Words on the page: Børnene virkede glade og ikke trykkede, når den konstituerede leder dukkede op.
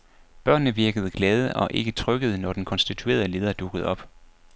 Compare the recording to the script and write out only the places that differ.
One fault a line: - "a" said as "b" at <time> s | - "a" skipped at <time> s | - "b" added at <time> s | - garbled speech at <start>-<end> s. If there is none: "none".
none